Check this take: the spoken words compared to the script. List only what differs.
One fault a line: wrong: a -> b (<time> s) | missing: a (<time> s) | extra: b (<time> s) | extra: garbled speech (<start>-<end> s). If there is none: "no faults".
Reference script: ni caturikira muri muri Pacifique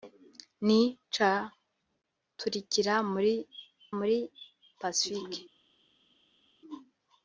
no faults